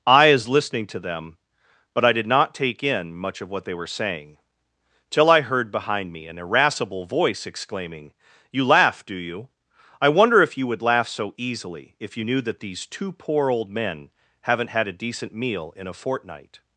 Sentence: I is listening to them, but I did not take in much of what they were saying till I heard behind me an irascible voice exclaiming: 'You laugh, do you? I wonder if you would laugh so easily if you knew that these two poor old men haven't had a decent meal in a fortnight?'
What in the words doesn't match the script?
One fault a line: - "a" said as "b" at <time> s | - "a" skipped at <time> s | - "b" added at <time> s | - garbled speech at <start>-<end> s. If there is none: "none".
none